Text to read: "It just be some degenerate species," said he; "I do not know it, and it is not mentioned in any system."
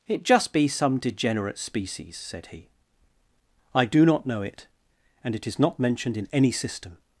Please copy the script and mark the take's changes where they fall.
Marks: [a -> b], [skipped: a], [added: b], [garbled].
"It just be some degenerate species," said he; "I do not know it, and it is not mentioned in any system."